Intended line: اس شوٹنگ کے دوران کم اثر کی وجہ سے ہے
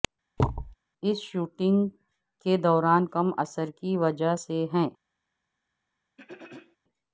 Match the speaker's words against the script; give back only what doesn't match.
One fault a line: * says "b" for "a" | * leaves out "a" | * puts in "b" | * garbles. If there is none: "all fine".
all fine